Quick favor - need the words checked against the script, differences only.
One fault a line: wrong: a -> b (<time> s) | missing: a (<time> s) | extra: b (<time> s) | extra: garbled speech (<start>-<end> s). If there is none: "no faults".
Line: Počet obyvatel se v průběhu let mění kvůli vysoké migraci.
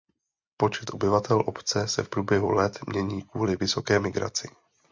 extra: obce (1.4 s)